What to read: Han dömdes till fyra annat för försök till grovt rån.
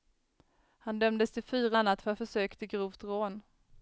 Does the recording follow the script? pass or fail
pass